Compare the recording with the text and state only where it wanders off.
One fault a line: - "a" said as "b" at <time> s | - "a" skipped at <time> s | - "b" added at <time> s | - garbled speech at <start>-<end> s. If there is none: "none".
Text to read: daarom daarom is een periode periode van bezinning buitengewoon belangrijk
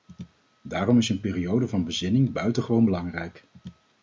- "daarom" skipped at 1.0 s
- "periode" skipped at 1.7 s